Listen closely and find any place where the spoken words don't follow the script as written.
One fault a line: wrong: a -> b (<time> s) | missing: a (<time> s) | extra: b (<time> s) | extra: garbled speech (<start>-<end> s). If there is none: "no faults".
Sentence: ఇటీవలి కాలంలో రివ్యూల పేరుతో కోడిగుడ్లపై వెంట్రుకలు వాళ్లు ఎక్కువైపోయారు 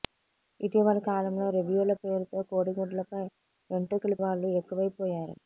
no faults